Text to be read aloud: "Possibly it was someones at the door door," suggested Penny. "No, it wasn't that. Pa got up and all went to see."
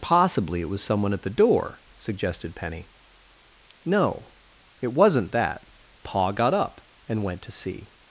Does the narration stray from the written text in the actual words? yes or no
yes